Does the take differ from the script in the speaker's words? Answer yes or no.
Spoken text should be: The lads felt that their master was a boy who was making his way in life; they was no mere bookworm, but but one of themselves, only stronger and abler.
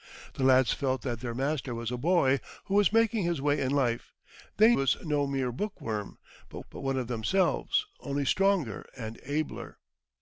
no